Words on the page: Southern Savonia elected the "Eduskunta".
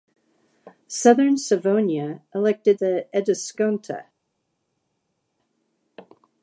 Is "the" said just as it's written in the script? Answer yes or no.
yes